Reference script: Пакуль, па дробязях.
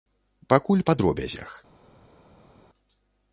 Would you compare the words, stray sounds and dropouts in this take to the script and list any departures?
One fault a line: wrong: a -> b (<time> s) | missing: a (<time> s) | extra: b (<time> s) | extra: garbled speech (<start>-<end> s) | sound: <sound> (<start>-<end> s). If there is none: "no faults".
no faults